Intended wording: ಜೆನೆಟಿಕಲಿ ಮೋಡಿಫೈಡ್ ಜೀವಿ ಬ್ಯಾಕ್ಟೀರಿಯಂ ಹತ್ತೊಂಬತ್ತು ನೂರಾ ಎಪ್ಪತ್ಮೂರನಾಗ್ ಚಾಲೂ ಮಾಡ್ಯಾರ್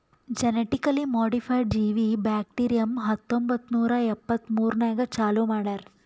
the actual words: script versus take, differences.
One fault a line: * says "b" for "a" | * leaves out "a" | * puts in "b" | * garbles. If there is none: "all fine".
all fine